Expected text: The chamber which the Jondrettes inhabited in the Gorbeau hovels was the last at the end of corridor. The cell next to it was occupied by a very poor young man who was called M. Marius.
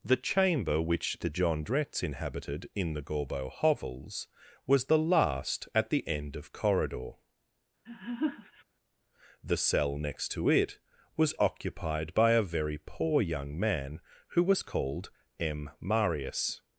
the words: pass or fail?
pass